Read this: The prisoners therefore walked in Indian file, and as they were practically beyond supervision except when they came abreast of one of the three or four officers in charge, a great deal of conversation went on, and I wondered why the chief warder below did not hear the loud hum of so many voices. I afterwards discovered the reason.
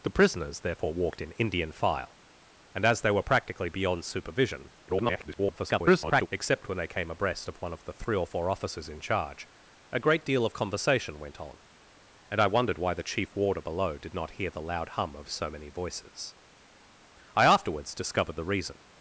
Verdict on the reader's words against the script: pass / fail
fail